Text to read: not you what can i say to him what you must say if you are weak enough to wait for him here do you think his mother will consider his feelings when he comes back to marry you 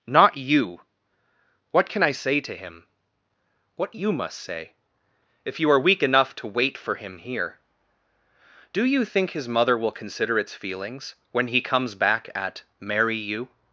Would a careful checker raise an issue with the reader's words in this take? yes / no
yes